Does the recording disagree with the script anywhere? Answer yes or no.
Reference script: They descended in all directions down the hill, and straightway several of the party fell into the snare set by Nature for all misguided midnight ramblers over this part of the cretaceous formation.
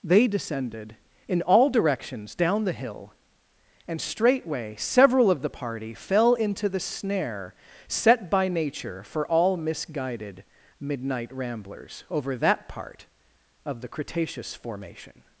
yes